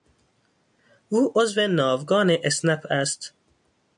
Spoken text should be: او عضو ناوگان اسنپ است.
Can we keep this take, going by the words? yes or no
yes